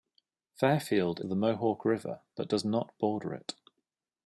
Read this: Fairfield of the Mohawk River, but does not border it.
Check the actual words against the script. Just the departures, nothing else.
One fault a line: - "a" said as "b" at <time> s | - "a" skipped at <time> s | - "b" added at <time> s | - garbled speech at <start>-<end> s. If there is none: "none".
none